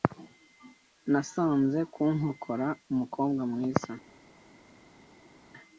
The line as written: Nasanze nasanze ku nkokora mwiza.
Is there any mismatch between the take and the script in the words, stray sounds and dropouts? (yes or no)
yes